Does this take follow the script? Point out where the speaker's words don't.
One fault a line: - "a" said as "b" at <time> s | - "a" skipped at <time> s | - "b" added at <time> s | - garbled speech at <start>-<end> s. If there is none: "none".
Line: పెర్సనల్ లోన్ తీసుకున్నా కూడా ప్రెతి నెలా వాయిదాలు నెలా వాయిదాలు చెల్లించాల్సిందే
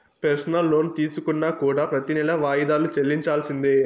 - "నెలా వాయిదాలు" skipped at 2.9 s